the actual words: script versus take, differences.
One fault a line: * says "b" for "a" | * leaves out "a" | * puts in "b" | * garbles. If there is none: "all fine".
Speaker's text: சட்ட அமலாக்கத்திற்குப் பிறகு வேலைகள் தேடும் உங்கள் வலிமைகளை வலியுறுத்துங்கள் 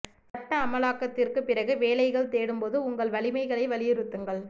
* puts in "போது"